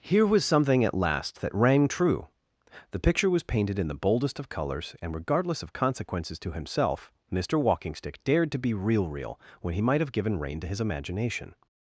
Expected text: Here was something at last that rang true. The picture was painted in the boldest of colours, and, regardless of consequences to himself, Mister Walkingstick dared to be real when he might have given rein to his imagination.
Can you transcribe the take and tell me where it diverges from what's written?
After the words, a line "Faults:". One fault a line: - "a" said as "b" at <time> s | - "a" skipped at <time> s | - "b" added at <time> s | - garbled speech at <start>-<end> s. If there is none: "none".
Here was something at last that rang true. The picture was painted in the boldest of colours, and, regardless of consequences to himself, Mister Walkingstick dared to be real real when he might have given rein to his imagination.
Faults:
- "real" added at 9.1 s